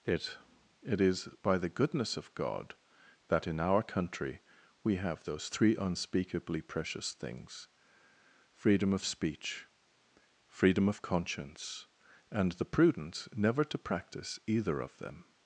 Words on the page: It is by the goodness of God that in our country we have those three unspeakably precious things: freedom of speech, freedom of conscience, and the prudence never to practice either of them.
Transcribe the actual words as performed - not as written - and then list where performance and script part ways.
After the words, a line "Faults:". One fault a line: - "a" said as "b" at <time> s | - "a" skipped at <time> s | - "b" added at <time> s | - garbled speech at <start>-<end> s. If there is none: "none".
It it is by the goodness of God that in our country we have those three unspeakably precious things: freedom of speech, freedom of conscience, and the prudence never to practice either of them.
Faults:
- "it" added at 0.8 s